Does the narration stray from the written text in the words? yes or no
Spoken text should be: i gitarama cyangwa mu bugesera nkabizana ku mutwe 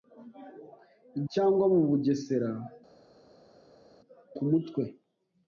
yes